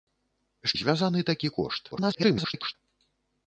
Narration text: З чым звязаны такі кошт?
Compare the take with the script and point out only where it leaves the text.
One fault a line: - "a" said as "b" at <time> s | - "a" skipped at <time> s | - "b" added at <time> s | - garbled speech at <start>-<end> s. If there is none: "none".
- "чым" skipped at 0.7 s
- garbled speech at 1.9-2.8 s